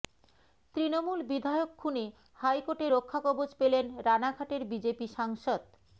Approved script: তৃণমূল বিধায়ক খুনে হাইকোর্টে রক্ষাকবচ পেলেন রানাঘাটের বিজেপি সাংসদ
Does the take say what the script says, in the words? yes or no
yes